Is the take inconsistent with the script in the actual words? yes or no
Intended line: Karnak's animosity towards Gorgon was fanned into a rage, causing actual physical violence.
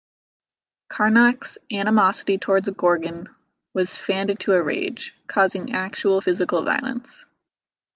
no